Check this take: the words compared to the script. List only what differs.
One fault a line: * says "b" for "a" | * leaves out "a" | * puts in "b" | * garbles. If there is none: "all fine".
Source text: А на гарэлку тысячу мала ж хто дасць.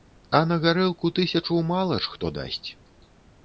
all fine